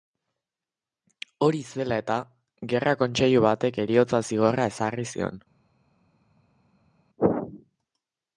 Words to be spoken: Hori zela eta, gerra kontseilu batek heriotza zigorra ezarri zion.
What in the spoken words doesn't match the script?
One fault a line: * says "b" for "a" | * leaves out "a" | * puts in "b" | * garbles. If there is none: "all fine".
all fine